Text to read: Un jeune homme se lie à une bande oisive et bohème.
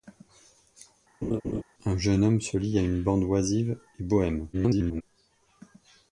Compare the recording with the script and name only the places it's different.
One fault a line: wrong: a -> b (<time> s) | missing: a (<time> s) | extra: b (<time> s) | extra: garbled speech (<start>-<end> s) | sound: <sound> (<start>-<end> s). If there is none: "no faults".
sound: laugh (1.2-1.6 s)
extra: garbled speech (4.5-5.0 s)